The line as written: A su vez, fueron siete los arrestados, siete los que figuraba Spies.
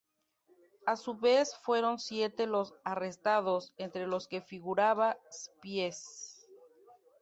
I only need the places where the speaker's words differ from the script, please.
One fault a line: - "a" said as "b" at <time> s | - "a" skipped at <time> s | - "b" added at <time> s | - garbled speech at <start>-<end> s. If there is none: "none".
- "siete" said as "entre" at 3.8 s